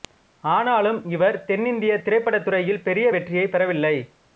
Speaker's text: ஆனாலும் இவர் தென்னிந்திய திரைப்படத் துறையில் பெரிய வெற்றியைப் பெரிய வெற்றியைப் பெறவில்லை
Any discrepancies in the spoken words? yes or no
yes